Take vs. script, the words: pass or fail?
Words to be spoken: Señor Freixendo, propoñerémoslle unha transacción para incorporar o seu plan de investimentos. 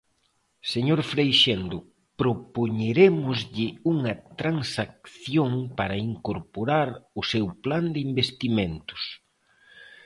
pass